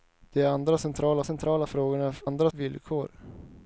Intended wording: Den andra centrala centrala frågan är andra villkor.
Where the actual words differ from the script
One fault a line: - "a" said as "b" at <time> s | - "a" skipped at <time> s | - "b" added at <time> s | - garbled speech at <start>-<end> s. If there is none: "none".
none